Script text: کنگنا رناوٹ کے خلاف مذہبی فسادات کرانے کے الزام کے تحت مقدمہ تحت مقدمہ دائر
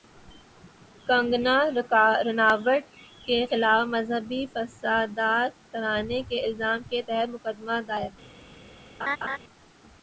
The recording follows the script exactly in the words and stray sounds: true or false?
false